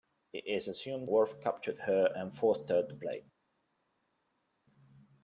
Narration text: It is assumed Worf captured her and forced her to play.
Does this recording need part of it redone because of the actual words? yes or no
no